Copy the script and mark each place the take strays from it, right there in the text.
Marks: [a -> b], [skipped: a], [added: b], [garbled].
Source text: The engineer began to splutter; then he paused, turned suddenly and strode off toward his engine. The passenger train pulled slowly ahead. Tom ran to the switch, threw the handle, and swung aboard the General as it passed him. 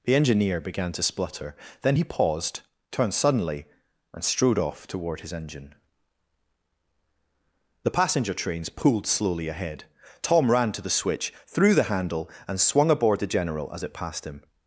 The engineer began to splutter; then he paused, turned suddenly and strode off toward his engine. The passenger [train -> trains] pulled slowly ahead. Tom ran to the switch, threw the handle, and swung aboard the General as it passed him.